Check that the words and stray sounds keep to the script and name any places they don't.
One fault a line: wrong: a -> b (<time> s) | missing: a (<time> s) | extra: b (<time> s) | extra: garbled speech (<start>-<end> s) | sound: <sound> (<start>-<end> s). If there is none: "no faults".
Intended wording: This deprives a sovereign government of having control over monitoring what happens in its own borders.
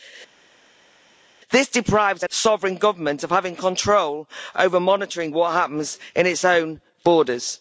no faults